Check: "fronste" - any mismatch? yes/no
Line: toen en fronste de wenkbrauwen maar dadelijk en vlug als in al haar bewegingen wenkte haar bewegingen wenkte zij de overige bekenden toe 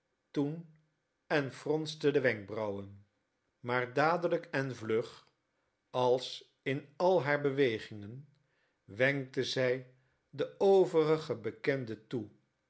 no